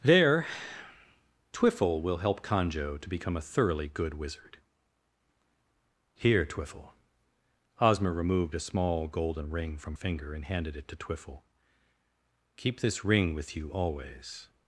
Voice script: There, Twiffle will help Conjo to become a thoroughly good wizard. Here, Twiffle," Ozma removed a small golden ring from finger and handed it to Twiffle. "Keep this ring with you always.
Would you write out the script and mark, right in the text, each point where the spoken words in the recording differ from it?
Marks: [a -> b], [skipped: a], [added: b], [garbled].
There, Twiffle will help Conjo to become a thoroughly good wizard. Here, Twiffle," Ozma removed a small golden ring from finger and handed it to Twiffle. "Keep this ring with you always.